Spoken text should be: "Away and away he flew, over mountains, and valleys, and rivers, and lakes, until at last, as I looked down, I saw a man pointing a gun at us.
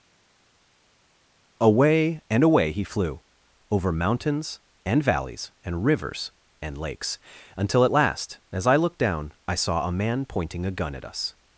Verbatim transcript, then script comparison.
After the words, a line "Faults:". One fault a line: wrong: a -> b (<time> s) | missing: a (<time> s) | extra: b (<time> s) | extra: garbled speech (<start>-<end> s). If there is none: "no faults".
"Away and away he flew, over mountains, and valleys, and rivers, and lakes, until at last, as I looked down, I saw a man pointing a gun at us.
Faults:
no faults